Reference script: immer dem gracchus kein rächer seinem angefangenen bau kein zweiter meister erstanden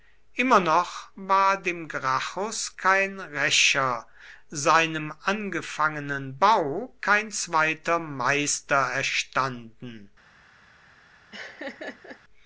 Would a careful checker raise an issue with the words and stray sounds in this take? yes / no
yes